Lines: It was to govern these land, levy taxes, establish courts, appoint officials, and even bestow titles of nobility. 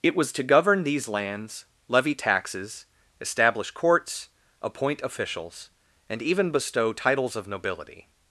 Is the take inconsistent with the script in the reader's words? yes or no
yes